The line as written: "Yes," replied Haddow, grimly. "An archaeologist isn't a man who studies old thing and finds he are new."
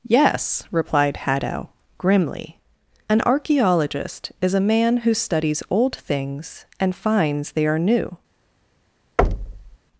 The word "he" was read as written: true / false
false